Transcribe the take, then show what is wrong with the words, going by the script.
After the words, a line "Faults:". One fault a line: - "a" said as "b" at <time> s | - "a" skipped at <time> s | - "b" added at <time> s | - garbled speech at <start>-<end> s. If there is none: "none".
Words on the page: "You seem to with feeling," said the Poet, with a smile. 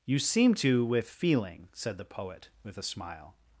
"You seem to with feeling," said the Poet, with a smile.
Faults:
none